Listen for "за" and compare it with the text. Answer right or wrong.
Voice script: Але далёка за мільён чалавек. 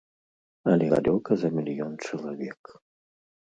right